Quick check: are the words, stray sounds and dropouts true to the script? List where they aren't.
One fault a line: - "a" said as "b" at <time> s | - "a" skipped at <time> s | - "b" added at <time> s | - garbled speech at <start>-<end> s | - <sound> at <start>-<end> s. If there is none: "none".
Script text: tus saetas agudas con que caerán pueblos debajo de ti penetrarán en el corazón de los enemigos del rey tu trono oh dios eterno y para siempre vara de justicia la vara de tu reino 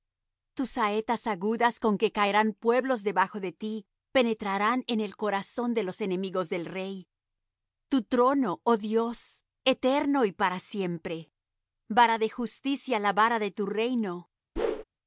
- whoosh at 14.6-14.8 s